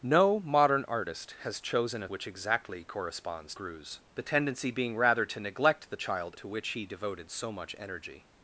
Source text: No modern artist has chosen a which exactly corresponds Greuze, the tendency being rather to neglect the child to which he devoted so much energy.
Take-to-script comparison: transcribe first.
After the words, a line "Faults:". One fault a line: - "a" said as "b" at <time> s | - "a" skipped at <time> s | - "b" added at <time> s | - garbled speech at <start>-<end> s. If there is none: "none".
No modern artist has chosen a which exactly corresponds Greuze, the tendency being rather to neglect the child to which he devoted so much energy.
Faults:
none